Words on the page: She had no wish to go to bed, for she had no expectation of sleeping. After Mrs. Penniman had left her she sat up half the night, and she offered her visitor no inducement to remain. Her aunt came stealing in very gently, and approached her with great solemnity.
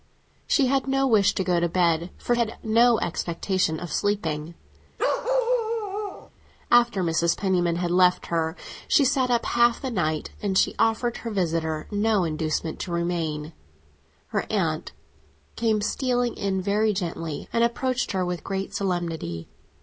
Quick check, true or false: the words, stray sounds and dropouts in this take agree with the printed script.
false